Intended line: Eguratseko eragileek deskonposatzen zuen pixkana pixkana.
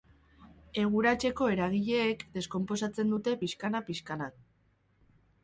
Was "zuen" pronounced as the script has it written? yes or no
no